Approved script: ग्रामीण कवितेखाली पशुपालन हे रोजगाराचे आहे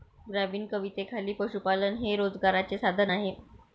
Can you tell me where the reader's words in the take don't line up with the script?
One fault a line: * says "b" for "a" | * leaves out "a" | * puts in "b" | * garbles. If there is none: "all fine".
* puts in "साधन"